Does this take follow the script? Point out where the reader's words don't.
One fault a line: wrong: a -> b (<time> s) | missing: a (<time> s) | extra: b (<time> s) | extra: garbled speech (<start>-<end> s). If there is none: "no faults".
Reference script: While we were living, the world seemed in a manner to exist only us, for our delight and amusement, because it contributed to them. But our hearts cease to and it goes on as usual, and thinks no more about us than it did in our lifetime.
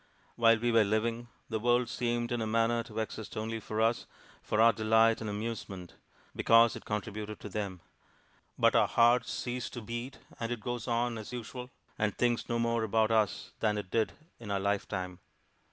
extra: for (3.6 s)
extra: beat (9.8 s)